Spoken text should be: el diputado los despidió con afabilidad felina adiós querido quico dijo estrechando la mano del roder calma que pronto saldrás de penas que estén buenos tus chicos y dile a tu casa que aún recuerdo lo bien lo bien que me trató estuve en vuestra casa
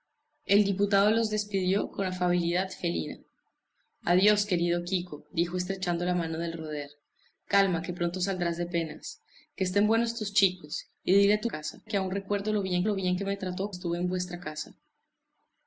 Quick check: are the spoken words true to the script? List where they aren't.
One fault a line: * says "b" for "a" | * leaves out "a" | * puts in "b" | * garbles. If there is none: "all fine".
all fine